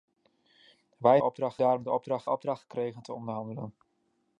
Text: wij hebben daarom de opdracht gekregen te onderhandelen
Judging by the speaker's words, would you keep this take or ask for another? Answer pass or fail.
fail